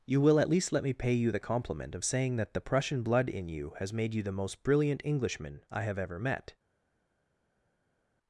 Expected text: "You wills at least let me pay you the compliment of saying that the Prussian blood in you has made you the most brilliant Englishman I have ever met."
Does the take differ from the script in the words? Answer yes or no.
yes